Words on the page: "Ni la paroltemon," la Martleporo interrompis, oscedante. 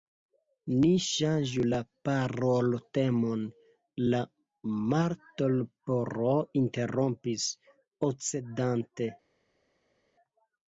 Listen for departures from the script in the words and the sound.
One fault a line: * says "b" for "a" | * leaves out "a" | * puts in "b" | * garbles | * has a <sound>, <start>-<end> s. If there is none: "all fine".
* puts in "ŝanĝu"